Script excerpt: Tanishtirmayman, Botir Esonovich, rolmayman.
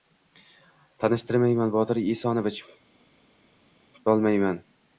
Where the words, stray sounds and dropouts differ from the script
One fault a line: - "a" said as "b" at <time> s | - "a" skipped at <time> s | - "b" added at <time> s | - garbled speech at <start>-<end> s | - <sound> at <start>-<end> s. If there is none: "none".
none